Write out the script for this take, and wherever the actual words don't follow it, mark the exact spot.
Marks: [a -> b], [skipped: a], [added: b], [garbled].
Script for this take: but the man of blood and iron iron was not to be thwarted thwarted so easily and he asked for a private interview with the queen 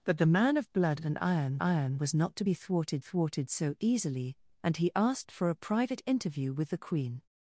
but the man of blood and iron iron was not to be thwarted thwarted so easily and he asked for a private interview with the queen